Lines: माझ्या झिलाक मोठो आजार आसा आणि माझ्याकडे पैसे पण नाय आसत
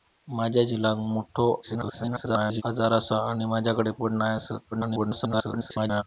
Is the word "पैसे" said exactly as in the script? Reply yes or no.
no